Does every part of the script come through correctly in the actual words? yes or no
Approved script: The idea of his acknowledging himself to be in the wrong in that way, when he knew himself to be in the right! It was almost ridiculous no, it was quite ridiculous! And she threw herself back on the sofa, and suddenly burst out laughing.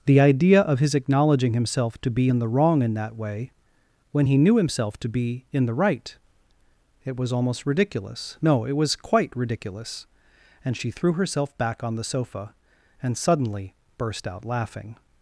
yes